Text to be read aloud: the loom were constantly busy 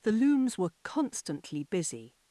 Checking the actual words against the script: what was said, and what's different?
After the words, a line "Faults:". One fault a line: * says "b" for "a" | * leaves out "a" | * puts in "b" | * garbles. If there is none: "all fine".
the looms were constantly busy
Faults:
* says "looms" for "loom"